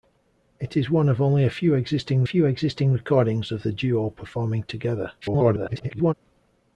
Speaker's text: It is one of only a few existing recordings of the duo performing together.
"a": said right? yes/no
yes